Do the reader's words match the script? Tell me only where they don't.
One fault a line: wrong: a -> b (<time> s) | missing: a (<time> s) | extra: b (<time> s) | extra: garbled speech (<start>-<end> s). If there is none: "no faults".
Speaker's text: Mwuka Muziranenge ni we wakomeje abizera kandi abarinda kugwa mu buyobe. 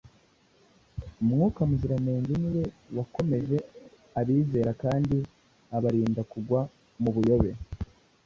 no faults